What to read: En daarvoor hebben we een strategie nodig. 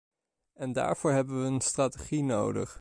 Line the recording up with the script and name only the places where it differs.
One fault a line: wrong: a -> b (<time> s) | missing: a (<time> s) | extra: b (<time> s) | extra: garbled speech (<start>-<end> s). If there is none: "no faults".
no faults